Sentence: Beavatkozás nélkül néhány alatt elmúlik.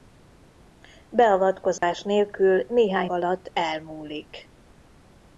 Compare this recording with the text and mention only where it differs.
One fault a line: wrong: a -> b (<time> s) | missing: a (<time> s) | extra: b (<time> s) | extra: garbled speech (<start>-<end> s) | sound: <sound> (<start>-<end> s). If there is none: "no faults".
sound: dropout (1.8-1.8 s)